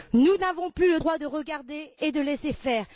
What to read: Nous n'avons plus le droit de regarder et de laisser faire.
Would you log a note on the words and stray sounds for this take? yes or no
no